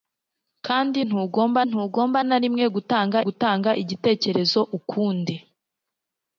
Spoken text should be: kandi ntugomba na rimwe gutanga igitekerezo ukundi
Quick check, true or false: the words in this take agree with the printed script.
false